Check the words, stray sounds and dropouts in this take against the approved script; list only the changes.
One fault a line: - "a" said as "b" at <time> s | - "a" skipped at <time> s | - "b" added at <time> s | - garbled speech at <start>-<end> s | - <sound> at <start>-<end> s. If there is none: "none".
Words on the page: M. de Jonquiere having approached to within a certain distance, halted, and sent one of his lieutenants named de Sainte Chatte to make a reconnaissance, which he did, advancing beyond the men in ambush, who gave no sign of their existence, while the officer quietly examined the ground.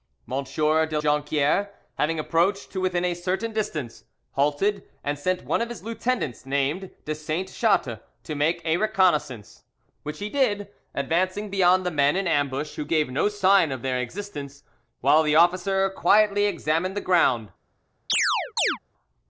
- chirp at 18.1-18.8 s